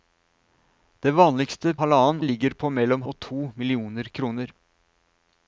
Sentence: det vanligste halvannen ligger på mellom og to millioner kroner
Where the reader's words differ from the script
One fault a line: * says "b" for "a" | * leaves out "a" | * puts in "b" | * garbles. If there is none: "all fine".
all fine